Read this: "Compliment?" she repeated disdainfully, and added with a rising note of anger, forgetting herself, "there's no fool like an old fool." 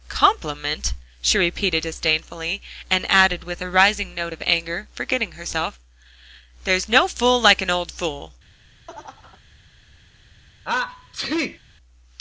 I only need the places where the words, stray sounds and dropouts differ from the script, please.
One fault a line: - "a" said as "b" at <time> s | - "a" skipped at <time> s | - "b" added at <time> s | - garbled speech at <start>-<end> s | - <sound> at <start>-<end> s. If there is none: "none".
- laugh at 8.9-9.4 s
- sneeze at 10.6-11.6 s